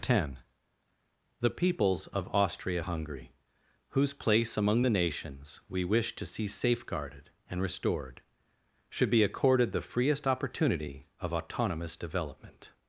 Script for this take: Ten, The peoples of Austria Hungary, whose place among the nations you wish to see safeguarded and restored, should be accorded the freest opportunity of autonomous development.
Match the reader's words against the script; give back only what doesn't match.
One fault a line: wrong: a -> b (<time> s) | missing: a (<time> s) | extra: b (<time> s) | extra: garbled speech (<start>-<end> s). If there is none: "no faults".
wrong: you -> we (5.7 s)